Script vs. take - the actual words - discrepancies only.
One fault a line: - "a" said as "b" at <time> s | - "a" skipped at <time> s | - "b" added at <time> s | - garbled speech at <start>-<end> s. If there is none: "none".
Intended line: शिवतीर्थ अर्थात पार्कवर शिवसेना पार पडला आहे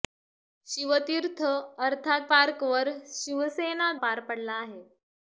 none